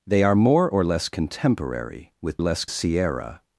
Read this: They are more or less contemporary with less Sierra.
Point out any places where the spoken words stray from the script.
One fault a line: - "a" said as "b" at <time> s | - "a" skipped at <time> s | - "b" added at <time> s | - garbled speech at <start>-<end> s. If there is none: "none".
none